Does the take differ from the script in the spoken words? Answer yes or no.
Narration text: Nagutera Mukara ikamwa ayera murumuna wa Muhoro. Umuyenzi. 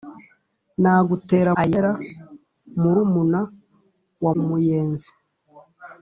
yes